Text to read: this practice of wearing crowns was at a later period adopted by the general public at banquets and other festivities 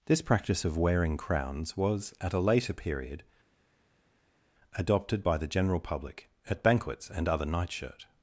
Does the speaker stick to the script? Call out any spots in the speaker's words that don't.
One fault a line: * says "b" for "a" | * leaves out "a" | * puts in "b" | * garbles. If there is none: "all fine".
* says "nightshirt" for "festivities"